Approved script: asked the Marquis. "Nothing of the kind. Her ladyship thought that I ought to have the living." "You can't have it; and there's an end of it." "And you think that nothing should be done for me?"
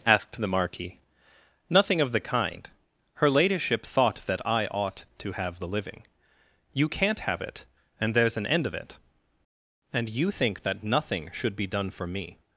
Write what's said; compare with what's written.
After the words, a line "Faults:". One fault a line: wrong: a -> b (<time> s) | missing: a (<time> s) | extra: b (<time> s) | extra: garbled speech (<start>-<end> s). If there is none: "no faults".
asked the Marquis. "Nothing of the kind. Her ladyship thought that I ought to have the living." "You can't have it; and there's an end of it." "And you think that nothing should be done for me?"
Faults:
no faults